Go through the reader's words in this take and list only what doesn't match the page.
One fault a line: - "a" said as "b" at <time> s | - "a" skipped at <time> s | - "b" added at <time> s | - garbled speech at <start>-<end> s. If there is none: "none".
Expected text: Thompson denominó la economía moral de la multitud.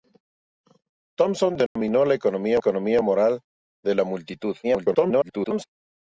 - "economía" added at 2.6 s
- garbled speech at 4.6-5.6 s